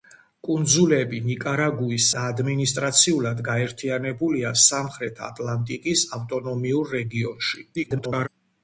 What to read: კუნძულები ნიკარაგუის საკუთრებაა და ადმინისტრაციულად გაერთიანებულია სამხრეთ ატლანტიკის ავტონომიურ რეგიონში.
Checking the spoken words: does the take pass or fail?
fail